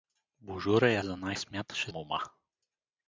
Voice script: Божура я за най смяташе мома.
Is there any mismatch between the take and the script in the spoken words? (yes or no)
no